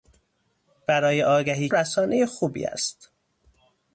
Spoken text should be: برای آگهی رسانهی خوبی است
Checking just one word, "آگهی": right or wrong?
right